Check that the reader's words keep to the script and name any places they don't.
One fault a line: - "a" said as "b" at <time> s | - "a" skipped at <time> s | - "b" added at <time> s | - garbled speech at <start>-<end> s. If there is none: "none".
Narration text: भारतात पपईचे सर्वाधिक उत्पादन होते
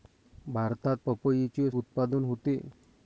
- "सर्वाधिक" skipped at 1.7 s